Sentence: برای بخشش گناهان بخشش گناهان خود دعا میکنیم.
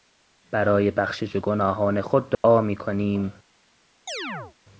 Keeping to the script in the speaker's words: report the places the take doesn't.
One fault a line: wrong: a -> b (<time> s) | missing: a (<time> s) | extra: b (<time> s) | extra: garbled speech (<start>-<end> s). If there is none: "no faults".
missing: بخشش گناهان (2.0 s)